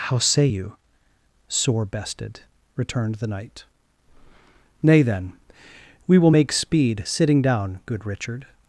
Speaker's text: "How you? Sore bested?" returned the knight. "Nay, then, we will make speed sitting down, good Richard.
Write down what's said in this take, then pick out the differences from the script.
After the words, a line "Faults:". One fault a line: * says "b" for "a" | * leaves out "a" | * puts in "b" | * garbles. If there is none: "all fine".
"How say you? Sore bested?" returned the knight. "Nay, then, we will make speed sitting down, good Richard.
Faults:
* puts in "say"